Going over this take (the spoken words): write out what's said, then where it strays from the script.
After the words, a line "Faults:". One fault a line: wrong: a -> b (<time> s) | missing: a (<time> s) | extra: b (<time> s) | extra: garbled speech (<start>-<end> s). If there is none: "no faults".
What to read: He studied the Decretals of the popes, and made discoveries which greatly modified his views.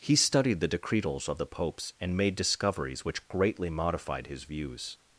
He studied the Decretals of the popes, and made discoveries which greatly modified his views.
Faults:
no faults